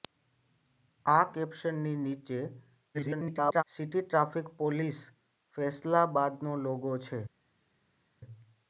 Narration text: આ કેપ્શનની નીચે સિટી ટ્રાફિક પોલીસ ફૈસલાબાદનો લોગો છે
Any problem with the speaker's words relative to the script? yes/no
yes